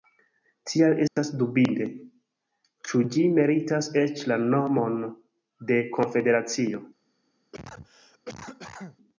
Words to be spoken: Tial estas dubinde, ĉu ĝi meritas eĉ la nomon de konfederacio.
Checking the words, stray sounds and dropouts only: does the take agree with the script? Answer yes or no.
no